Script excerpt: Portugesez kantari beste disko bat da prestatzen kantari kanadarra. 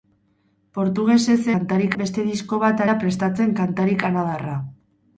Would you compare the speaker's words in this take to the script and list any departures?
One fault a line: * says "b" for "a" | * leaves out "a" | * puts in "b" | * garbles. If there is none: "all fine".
all fine